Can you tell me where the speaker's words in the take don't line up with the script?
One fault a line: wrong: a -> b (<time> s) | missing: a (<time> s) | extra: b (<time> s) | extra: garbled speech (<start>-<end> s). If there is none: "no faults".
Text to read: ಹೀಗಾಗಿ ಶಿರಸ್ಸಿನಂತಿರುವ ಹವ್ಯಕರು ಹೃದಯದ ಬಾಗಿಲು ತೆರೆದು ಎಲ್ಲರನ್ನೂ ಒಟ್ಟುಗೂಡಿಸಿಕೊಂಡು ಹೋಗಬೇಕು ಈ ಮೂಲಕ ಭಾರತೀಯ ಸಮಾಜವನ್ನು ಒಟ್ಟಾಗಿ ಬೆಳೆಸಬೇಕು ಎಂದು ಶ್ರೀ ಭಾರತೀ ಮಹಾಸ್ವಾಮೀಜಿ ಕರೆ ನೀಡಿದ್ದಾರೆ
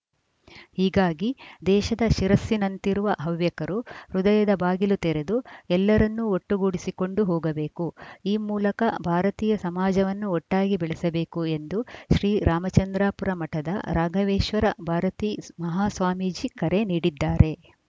extra: ದೇಶದ (1.7 s)
extra: ರಾಮಚಂದ್ರಾಪುರ ಮಠದ ರಾಘವೇಶ್ವರ (12.5 s)